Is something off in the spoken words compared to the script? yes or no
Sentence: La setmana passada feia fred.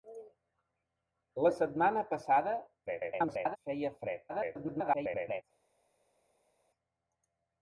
yes